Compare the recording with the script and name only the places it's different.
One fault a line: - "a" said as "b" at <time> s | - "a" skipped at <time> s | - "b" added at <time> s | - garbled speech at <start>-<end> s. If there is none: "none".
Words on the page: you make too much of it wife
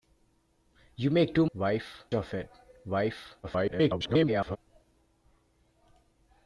- "much" said as "wife" at 1.5 s
- garbled speech at 3.4-4.6 s